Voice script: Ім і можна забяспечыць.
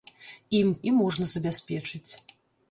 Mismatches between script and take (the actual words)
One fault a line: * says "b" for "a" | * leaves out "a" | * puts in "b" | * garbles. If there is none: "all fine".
all fine